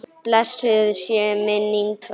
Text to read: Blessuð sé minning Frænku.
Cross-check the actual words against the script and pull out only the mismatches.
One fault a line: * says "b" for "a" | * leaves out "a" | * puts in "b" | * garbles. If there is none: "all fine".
all fine